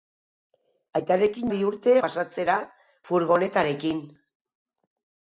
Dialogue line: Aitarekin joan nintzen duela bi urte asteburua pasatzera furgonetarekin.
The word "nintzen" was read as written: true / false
false